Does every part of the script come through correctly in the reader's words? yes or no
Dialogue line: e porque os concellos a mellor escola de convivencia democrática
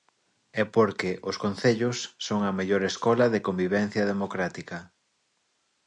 no